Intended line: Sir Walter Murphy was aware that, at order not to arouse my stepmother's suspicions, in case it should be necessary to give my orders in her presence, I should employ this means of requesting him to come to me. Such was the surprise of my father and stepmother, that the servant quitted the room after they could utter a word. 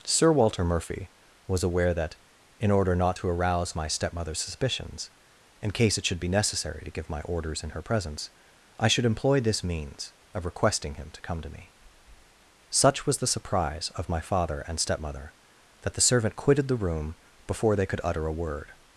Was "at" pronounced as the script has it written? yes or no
no